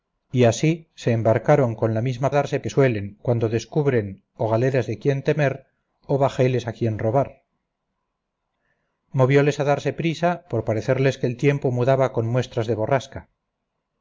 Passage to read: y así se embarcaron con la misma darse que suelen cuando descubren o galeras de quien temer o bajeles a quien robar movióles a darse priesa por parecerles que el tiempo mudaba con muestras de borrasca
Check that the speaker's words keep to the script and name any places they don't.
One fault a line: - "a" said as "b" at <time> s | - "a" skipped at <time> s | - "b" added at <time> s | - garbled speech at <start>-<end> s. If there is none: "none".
none